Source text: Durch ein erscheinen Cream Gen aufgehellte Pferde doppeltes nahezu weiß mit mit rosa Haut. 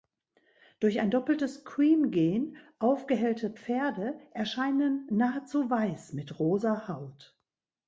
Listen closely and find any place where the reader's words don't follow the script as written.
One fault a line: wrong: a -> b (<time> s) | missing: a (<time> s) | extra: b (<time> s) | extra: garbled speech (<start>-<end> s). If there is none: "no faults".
wrong: erscheinen -> doppeltes (1.1 s)
wrong: doppeltes -> erscheinen (4.3 s)
missing: mit (6.4 s)